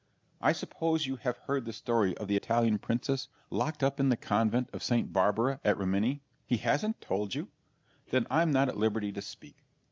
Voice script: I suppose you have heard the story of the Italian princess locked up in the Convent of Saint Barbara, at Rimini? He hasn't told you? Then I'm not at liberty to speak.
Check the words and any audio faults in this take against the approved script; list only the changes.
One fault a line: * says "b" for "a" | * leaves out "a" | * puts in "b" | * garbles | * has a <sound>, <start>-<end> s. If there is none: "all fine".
all fine